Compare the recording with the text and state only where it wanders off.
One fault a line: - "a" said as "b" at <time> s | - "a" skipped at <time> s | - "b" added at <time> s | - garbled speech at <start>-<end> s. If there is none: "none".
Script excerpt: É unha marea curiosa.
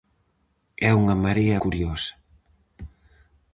none